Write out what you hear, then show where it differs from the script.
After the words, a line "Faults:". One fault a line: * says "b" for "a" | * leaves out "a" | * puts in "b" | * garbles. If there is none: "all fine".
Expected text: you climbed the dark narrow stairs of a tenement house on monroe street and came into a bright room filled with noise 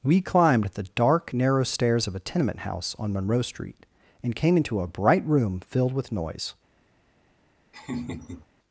we climbed the dark narrow stairs of a tenement house on monroe street and came into a bright room filled with noise
Faults:
* says "we" for "you"